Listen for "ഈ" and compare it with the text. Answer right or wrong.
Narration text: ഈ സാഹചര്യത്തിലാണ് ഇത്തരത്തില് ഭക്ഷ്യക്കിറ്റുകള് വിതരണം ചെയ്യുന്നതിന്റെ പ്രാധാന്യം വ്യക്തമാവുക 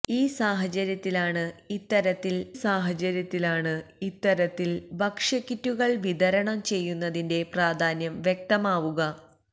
right